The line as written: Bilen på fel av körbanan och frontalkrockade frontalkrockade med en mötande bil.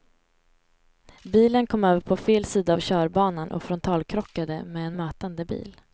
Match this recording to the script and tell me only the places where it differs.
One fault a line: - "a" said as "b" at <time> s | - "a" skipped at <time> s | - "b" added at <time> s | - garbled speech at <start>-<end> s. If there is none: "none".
- "kom över" added at 1.7 s
- "sida" added at 2.5 s
- "frontalkrockade" skipped at 4.6 s